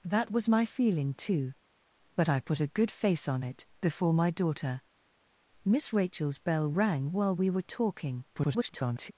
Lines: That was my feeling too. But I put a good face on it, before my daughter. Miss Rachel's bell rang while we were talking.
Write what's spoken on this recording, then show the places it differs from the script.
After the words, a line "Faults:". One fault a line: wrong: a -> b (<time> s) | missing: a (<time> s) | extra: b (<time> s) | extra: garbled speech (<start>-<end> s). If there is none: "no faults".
That was my feeling too. But I put a good face on it, before my daughter. Miss Rachel's bell rang while we were talking. [garbled]
Faults:
extra: garbled speech (8.3-9.1 s)